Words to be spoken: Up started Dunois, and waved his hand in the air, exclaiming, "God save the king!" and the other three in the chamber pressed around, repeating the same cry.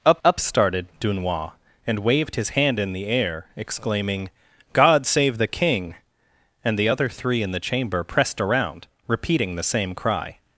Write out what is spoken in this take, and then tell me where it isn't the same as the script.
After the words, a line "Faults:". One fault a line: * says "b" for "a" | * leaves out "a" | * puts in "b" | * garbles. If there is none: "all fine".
Up up started Dunois, and waved his hand in the air, exclaiming, "God save the king!" and the other three in the chamber pressed around, repeating the same cry.
Faults:
* puts in "up"